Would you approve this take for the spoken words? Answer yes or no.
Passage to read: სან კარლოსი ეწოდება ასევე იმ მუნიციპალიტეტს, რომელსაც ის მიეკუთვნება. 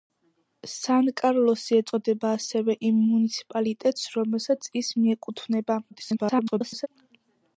no